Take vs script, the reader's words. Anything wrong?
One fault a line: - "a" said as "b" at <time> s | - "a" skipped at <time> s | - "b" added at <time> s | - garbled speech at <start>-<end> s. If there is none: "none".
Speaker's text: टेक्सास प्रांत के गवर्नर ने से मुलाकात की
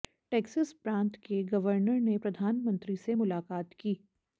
- "प्रधानमंत्री" added at 2.2 s